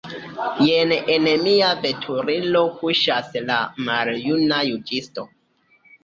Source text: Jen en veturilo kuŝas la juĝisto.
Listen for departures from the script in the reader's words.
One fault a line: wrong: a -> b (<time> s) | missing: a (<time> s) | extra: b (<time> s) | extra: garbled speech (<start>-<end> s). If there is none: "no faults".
extra: mia (1.4 s)
extra: maljuna (3.9 s)